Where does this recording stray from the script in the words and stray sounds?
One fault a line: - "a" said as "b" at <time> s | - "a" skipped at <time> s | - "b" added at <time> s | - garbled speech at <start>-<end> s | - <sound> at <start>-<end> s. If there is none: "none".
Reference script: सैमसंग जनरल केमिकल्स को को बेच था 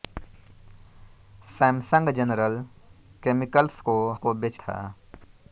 none